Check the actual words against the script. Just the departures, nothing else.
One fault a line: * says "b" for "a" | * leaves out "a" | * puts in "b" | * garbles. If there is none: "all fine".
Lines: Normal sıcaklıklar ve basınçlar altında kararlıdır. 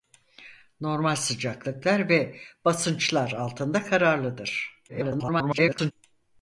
* garbles